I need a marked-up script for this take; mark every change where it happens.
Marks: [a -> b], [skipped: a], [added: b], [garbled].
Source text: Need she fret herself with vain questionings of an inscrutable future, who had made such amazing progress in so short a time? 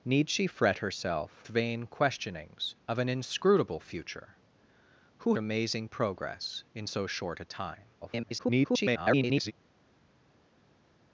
Need she fret herself [skipped: with] vain questionings of an inscrutable future, who [skipped: had made such] amazing progress in so short a time? [garbled]